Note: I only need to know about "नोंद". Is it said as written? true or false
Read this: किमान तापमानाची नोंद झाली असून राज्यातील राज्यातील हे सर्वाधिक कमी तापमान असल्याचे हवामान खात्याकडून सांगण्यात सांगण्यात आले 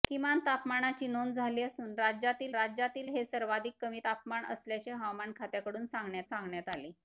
true